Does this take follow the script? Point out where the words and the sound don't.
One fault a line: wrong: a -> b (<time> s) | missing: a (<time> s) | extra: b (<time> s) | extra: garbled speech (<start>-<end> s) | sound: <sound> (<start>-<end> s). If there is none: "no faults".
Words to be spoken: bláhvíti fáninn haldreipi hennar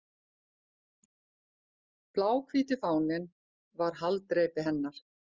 extra: var (3.8 s)